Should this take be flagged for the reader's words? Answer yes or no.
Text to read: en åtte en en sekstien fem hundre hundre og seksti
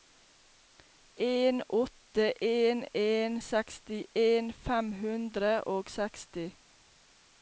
yes